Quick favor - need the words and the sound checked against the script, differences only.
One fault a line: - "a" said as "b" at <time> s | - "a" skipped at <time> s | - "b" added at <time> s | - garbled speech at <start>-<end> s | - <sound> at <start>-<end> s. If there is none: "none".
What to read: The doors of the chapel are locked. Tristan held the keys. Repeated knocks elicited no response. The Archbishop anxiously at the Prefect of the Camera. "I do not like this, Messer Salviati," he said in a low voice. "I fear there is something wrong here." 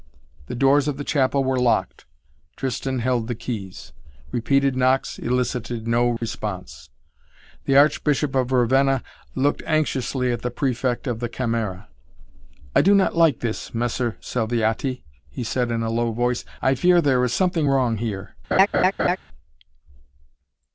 - "are" said as "were" at 1.4 s
- dropout at 6.2-6.2 s
- "of Ravenna looked" added at 8.3 s
- laugh at 18.5-19.2 s